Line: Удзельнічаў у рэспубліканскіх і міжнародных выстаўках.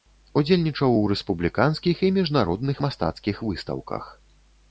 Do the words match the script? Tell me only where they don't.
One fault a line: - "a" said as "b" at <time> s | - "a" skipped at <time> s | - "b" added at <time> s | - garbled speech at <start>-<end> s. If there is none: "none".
- "мастацкіх" added at 2.9 s